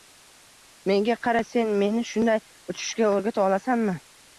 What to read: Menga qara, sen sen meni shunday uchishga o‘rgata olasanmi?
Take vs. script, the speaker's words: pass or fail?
fail